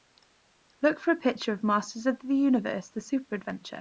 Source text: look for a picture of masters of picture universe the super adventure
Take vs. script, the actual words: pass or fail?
fail